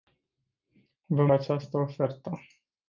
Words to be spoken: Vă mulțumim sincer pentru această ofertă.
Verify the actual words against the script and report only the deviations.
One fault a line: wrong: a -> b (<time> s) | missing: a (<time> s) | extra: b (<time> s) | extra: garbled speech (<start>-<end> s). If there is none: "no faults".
missing: mulțumim sincer pentru (1.3 s)